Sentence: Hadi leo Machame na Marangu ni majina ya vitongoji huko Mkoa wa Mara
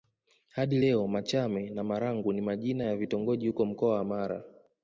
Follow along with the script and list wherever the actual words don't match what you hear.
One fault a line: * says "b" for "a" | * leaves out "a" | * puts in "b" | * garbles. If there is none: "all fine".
all fine